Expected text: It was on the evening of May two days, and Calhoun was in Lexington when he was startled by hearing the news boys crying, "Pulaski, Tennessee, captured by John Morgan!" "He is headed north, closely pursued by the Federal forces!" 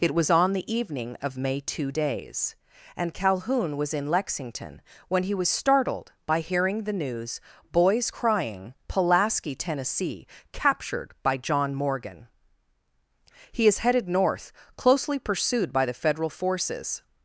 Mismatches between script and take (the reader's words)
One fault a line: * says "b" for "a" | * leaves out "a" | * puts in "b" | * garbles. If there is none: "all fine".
all fine